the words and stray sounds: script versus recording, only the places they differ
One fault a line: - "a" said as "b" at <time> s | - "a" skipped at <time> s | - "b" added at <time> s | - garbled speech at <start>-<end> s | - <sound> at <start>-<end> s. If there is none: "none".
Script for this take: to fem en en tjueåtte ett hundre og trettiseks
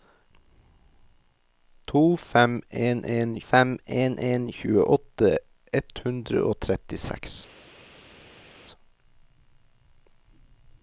- "fem en en" added at 3.5 s